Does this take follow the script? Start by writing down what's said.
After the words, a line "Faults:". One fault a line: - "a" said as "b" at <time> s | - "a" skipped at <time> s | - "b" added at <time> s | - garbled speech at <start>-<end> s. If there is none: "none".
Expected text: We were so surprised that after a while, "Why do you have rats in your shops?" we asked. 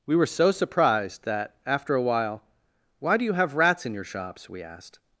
We were so surprised that after a while, "Why do you have rats in your shops?" we asked.
Faults:
none